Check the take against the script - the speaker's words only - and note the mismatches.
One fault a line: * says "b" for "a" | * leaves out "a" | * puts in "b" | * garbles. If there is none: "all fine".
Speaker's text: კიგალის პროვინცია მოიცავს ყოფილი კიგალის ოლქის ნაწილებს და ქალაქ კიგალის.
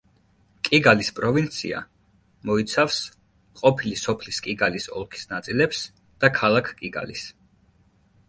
* puts in "სოფლის"